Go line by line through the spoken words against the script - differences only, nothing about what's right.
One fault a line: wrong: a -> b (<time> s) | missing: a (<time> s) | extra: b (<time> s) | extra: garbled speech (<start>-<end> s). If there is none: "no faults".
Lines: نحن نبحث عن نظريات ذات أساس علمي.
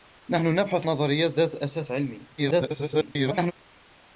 missing: عن (0.9 s)
extra: garbled speech (2.4-3.5 s)